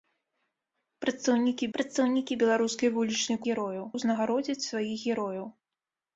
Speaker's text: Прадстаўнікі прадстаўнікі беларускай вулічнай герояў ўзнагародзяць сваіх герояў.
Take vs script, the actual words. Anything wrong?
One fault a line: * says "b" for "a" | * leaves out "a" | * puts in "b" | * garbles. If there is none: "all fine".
all fine